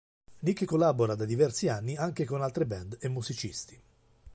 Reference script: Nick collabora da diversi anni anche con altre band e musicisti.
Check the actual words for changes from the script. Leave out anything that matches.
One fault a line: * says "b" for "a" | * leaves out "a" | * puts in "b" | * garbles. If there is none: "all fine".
all fine